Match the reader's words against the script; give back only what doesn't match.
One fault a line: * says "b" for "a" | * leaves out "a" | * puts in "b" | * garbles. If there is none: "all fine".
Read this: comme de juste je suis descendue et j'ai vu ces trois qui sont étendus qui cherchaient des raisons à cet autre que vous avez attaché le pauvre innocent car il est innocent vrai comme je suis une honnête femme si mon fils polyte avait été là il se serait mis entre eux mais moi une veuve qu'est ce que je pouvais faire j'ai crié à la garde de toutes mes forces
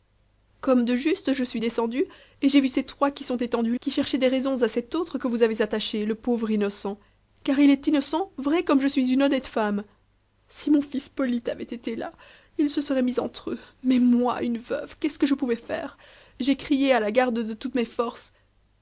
all fine